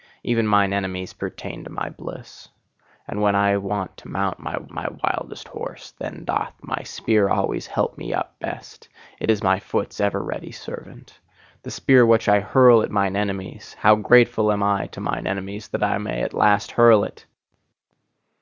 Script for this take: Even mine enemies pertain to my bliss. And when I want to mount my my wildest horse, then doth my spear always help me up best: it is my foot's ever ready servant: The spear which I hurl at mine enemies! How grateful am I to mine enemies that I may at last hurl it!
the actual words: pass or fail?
pass